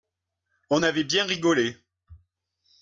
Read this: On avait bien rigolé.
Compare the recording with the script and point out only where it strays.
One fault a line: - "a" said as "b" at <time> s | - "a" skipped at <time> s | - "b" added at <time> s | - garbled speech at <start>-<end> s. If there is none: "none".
none